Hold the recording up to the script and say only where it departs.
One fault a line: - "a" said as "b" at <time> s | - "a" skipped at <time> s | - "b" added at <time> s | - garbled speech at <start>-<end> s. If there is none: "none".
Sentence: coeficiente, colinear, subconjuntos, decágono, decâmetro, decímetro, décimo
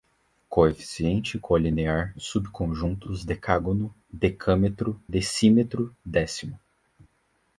none